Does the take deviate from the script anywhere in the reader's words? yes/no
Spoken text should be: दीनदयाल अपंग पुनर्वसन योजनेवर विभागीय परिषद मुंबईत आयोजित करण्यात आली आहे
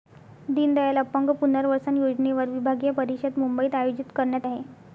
yes